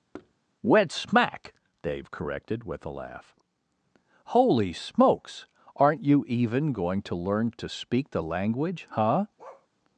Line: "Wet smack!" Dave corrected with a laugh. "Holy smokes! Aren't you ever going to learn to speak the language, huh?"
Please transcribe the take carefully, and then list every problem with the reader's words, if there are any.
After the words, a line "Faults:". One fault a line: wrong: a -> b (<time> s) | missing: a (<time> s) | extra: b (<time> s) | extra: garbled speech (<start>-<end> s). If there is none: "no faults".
"Wet smack!" Dave corrected with a laugh. "Holy smokes! Aren't you even going to learn to speak the language, huh?"
Faults:
wrong: ever -> even (6.3 s)